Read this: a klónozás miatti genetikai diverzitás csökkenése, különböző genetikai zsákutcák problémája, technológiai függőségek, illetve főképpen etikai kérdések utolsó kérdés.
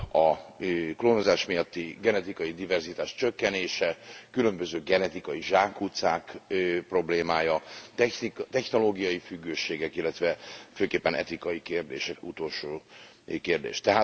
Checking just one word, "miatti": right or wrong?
right